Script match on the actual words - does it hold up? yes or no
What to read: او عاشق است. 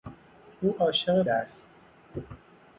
yes